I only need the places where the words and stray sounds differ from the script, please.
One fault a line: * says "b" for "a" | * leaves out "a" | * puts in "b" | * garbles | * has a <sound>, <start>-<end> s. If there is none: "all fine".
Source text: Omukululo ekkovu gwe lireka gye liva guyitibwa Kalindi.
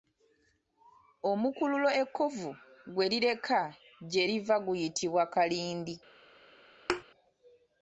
* has a thud, 6.9-7.0 s